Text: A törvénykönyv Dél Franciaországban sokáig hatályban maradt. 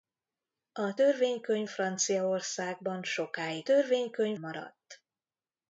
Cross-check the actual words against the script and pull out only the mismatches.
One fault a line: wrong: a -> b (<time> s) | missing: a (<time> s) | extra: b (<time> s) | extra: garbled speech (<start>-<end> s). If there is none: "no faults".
missing: Dél (1.7 s)
wrong: hatályban -> törvénykönyv (3.6 s)